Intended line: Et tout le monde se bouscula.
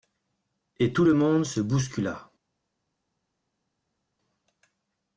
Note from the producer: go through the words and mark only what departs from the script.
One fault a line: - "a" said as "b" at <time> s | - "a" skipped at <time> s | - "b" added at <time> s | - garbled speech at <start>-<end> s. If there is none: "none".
none